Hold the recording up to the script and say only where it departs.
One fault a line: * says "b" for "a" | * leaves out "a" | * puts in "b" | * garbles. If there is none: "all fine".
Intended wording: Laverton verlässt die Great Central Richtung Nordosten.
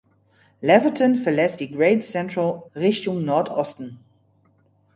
all fine